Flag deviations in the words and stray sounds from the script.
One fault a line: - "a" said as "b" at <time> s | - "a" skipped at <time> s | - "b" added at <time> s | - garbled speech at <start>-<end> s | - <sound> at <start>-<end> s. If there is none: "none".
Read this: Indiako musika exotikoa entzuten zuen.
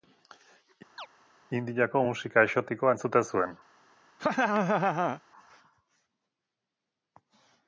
- chirp at 1.0-1.1 s
- laugh at 4.2-5.2 s